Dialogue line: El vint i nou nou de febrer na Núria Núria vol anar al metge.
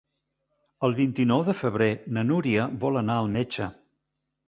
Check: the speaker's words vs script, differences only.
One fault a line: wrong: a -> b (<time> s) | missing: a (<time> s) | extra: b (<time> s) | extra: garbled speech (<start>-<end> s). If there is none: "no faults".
missing: nou (1.4 s)
missing: Núria (2.7 s)